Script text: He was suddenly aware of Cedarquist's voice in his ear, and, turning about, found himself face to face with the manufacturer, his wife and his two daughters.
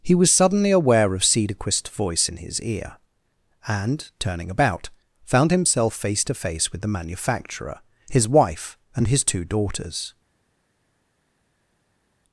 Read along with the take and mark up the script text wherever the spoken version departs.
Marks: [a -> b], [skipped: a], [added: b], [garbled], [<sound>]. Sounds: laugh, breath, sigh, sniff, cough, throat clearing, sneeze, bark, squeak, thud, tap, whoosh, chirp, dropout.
He was suddenly aware of Cedarquist's voice in his ear, and, turning about, found himself face to face with the manufacturer, his wife and his two daughters.